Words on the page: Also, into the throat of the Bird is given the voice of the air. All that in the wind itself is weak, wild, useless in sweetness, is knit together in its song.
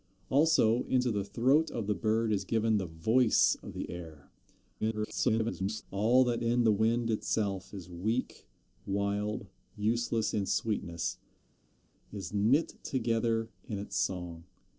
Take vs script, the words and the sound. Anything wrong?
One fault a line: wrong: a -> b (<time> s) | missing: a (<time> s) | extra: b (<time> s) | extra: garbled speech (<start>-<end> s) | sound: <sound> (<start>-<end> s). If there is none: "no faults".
extra: garbled speech (4.8-5.8 s)